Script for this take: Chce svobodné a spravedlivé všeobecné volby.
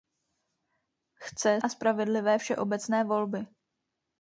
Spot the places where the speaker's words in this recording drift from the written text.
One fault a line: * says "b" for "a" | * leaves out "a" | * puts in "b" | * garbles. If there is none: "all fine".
* leaves out "svobodné"